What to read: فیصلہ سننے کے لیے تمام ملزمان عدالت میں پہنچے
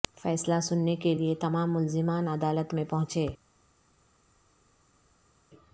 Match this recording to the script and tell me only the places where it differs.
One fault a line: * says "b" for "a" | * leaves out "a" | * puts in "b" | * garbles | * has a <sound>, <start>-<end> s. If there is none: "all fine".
all fine